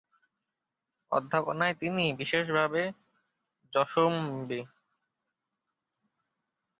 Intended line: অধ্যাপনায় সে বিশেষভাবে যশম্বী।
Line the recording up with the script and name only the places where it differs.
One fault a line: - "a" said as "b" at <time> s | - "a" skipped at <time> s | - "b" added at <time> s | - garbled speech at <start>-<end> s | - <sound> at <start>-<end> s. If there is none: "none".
- "সে" said as "তিনি" at 1.8 s